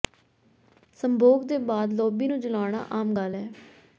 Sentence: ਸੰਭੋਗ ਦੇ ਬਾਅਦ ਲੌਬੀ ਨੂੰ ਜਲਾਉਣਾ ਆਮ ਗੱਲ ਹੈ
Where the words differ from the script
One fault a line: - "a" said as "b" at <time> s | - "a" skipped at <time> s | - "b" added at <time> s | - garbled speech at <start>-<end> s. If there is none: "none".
none